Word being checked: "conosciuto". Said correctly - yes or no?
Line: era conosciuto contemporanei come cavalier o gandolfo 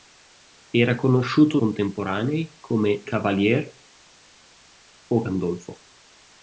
yes